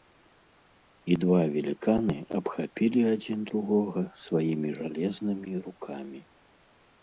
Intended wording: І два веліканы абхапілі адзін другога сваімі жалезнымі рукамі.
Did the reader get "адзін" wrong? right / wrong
right